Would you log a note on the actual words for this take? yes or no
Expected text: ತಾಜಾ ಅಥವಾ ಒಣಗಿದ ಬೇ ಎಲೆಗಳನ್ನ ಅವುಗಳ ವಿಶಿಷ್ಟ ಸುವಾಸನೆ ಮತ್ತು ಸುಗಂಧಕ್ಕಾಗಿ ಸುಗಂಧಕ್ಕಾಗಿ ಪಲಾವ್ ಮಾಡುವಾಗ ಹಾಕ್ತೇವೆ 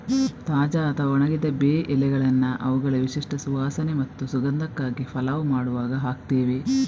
yes